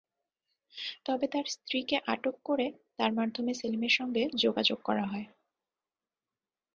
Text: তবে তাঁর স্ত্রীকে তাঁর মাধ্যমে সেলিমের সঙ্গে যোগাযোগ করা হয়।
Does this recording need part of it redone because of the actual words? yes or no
yes